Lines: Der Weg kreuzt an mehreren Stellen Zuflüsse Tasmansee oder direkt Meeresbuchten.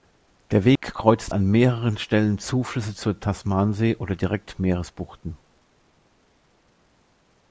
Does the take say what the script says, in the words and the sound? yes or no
no